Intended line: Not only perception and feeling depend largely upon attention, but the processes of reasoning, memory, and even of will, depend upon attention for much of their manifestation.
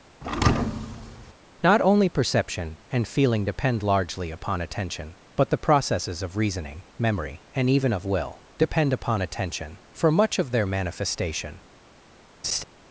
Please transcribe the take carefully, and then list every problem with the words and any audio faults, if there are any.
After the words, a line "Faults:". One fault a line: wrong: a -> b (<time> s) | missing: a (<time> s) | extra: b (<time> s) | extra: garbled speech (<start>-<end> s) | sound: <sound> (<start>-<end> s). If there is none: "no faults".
Not only perception and feeling depend largely upon attention, but the processes of reasoning, memory, and even of will, depend upon attention for much of their manifestation.
Faults:
sound: thud (0.2-1.3 s)
sound: laugh (12.4-12.6 s)